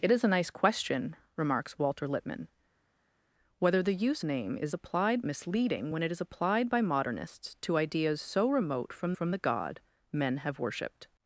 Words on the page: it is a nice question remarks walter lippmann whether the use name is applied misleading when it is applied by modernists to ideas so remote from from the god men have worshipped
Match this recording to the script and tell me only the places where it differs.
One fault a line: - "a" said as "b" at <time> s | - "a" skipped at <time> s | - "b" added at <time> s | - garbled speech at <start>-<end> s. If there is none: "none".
none